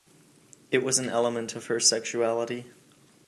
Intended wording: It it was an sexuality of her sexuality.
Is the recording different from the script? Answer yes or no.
yes